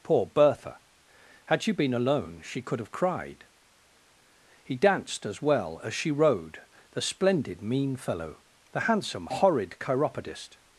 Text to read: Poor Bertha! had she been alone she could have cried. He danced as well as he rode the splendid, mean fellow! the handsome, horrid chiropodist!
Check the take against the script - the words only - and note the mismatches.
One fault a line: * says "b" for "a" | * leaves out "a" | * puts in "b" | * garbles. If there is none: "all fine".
* says "she" for "he"